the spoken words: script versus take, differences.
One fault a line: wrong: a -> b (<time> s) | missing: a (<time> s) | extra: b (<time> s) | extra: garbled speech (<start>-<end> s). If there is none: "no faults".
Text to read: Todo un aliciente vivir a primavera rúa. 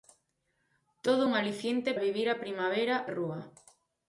no faults